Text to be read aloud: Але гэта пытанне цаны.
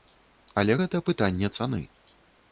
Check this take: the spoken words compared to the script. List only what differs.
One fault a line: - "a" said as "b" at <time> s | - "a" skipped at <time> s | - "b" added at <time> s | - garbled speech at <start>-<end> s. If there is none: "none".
none